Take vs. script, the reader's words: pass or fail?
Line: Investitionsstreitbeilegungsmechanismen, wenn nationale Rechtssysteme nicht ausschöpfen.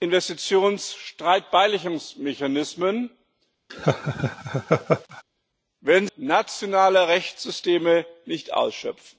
pass